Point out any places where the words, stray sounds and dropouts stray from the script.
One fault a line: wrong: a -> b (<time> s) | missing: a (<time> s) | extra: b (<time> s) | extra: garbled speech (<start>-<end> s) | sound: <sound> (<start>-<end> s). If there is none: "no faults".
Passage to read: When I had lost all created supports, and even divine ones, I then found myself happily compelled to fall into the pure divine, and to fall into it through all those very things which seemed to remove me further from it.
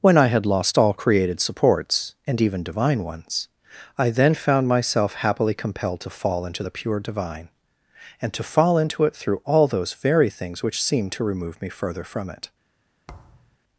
sound: thud (13.1-13.6 s)